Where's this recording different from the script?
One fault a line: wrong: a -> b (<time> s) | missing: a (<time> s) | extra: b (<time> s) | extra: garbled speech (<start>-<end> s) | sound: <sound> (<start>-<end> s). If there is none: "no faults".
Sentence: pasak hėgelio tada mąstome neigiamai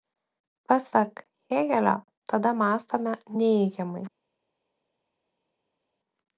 no faults